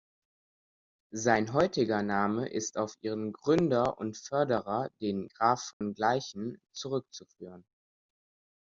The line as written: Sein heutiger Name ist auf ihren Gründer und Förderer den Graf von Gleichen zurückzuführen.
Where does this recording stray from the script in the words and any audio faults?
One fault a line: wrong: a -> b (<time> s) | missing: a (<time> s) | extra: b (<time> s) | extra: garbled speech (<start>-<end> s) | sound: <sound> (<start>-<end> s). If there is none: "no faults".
sound: dropout (5.7-5.8 s)